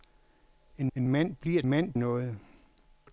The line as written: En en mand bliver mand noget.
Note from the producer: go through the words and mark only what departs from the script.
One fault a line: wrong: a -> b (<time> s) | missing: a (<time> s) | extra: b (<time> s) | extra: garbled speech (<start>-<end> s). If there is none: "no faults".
no faults